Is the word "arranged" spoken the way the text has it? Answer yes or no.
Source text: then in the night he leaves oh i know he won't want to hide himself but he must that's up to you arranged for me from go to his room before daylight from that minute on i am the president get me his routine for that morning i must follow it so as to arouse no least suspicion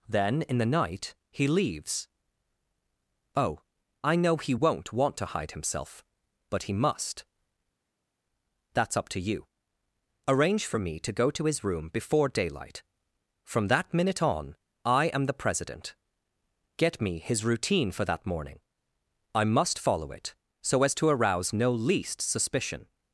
no